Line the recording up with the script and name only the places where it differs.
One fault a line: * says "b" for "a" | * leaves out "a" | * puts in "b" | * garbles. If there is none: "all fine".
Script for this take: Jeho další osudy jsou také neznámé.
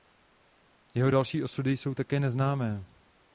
all fine